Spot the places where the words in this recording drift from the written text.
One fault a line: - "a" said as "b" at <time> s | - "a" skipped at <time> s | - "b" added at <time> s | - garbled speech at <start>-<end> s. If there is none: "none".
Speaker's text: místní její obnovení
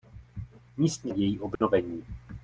none